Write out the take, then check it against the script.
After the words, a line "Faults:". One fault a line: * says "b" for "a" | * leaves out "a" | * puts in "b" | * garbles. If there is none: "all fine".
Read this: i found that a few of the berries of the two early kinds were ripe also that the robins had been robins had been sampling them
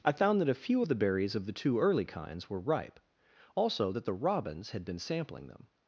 i found that a few of the berries of the two early kinds were ripe also that the robins had been sampling them
Faults:
* leaves out "robins had been"